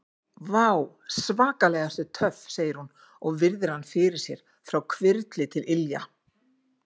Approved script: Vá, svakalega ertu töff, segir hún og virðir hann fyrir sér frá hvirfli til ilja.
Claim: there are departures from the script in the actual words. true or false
false